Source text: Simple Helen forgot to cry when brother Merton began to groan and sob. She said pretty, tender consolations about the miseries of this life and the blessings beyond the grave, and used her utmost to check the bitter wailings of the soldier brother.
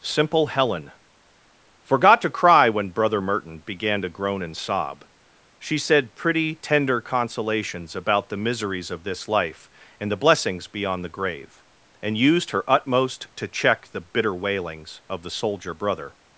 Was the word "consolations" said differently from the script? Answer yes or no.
no